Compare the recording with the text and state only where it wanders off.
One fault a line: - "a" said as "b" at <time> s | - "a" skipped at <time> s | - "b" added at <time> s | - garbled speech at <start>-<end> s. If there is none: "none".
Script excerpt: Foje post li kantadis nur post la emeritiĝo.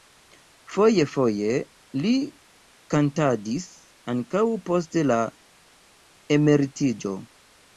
- "post" said as "foje" at 1.1 s
- "nur" said as "ankaŭ" at 4.2 s